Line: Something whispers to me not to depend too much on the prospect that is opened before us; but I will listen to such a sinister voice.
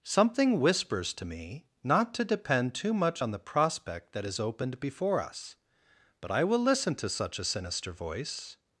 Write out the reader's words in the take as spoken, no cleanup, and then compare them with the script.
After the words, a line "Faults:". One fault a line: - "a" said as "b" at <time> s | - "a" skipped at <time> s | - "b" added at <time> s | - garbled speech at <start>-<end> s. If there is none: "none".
Something whispers to me not to depend too much on the prospect that is opened before us; but I will listen to such a sinister voice.
Faults:
none